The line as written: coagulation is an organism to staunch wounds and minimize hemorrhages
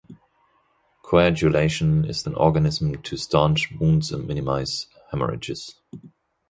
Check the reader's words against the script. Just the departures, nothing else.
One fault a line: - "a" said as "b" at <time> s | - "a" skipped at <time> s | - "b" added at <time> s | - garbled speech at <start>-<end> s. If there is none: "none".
none